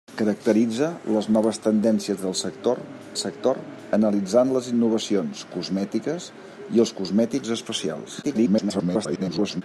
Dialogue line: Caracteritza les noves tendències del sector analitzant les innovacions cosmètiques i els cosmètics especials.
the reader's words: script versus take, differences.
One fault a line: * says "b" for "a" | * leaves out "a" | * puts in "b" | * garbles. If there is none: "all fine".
* puts in "sector"
* garbles